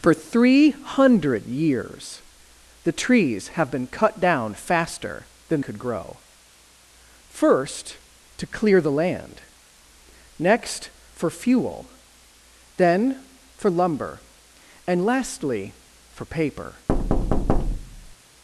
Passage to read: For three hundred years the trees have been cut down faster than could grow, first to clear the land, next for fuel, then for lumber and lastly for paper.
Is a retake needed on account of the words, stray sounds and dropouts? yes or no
yes